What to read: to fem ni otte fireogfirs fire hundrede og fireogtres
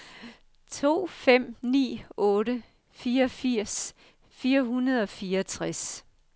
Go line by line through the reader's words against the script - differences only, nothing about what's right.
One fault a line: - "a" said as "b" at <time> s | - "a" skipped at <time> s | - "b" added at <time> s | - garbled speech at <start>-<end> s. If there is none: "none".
none